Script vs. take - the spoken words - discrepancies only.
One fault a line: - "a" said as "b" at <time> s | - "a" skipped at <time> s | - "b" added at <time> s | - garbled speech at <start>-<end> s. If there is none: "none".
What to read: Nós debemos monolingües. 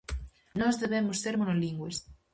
- "ser" added at 1.2 s